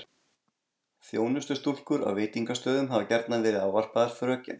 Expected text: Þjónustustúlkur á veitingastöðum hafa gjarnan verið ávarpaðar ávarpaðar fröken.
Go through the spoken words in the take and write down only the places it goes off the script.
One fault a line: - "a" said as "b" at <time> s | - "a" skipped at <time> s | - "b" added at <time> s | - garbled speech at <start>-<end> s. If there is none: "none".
- "ávarpaðar" skipped at 4.1 s